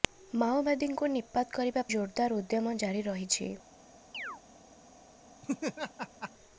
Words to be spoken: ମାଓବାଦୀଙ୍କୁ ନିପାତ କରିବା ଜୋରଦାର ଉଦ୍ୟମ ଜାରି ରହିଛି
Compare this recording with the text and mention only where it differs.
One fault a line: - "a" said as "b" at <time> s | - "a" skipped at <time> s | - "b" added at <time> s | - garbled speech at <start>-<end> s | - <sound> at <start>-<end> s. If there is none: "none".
- chirp at 4.1-4.4 s
- laugh at 5.4-6.3 s